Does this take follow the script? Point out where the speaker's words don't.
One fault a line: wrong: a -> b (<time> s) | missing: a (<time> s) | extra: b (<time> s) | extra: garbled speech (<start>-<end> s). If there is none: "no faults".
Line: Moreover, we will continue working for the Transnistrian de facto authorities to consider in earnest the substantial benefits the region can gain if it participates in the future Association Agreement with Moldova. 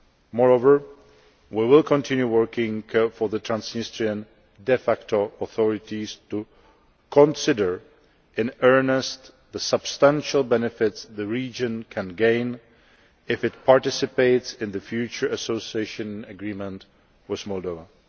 no faults